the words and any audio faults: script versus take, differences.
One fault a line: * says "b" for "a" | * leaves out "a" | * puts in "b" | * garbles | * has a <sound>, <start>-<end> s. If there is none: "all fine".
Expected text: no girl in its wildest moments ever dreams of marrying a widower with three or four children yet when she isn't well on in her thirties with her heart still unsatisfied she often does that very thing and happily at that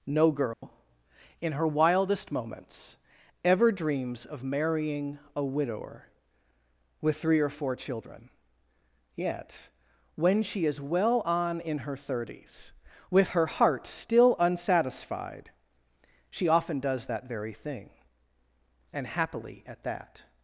* has a dropout, 0.5-0.6 s
* says "her" for "its"
* says "is" for "isn't"